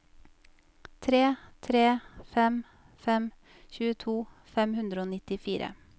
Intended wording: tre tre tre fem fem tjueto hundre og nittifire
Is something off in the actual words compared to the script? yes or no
yes